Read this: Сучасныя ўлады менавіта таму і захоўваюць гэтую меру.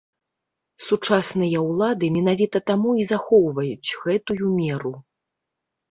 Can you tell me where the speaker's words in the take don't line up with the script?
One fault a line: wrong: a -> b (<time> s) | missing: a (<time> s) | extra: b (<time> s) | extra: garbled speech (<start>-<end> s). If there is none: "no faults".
no faults